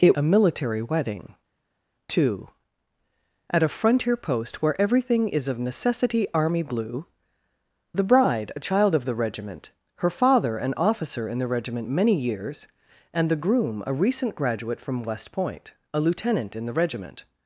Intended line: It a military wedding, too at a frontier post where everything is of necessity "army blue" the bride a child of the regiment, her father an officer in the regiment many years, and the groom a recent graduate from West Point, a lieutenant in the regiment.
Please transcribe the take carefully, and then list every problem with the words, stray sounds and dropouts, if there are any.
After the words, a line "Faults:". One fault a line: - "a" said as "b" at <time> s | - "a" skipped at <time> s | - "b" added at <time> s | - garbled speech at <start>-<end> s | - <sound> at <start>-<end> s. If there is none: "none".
It a military wedding, too at a frontier post where everything is of necessity "army blue" the bride a child of the regiment, her father an officer in the regiment many years, and the groom a recent graduate from West Point, a lieutenant in the regiment.
Faults:
none